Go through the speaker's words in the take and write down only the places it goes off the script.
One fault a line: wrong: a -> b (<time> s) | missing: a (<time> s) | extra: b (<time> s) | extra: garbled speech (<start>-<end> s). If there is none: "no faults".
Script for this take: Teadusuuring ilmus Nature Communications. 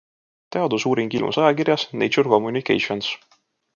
extra: ajakirjas (1.4 s)